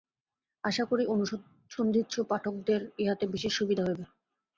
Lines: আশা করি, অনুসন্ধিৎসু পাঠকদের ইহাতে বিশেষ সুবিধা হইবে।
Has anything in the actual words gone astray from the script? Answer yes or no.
no